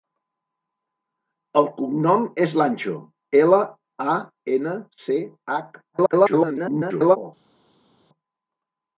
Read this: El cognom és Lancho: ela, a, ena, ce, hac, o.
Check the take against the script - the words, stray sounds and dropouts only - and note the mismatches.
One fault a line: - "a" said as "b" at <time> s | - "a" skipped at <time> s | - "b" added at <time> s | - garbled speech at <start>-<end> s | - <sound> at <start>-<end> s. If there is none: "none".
- garbled speech at 5.9-7.2 s